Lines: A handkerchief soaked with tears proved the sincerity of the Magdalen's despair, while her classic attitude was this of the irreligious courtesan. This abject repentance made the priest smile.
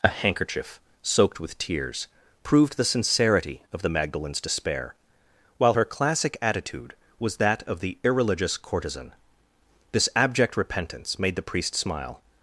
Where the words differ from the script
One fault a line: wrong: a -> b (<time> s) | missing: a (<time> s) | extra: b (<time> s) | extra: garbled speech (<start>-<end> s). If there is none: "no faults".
wrong: this -> that (7.4 s)